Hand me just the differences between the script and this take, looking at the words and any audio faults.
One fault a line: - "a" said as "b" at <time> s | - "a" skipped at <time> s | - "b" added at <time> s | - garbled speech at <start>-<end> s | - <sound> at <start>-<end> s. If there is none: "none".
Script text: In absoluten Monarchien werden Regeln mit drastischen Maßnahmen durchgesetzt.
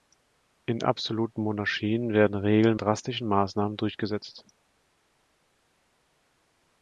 - "mit" skipped at 2.8 s